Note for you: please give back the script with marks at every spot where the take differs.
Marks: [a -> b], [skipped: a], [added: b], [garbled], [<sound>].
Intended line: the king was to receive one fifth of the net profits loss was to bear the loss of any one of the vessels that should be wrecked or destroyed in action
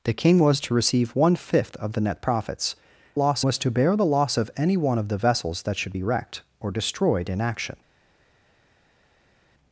the king was to receive one fifth of the net profits loss was to bear the loss of any one of the vessels that should be wrecked or destroyed in action